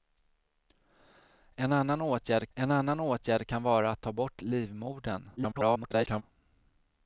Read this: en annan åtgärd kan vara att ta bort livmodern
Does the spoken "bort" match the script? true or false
true